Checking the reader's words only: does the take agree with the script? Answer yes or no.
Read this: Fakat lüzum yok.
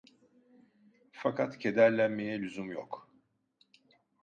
no